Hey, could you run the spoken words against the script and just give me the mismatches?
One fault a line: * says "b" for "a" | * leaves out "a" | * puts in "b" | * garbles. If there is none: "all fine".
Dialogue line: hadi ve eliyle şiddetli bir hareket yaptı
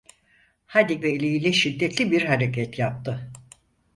all fine